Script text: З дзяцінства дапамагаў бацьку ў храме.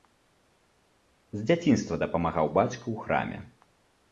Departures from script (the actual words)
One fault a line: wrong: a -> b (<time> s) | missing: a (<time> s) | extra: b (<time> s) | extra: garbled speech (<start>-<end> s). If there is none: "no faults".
no faults